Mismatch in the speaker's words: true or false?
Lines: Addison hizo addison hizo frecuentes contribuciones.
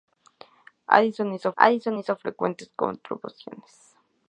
false